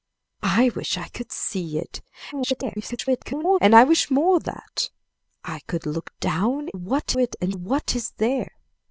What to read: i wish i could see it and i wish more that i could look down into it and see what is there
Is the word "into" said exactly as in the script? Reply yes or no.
no